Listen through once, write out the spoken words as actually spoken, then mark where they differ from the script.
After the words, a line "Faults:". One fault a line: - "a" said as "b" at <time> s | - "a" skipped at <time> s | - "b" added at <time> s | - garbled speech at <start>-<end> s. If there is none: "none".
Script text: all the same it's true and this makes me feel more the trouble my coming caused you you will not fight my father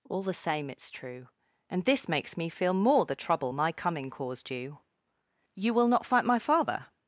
all the same it's true and this makes me feel more the trouble my coming caused you you will not fight my father
Faults:
none